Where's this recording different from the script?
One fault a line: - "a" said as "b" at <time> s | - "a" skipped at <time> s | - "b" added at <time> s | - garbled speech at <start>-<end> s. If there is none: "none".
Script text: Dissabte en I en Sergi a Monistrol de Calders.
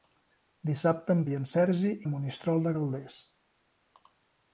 none